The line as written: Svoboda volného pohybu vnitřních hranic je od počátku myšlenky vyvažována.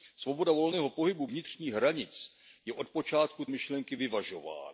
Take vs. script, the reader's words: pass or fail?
pass